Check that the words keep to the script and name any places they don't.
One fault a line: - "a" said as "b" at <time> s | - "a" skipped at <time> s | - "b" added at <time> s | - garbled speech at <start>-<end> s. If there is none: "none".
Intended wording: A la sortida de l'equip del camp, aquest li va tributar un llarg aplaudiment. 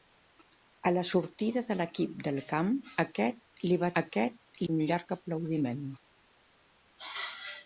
- "tributar" said as "aquest" at 4.0 s